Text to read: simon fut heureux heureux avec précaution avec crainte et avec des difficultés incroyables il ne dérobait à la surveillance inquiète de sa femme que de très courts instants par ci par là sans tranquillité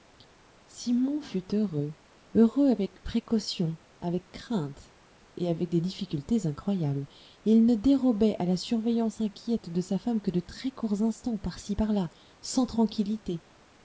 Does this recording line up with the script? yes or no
yes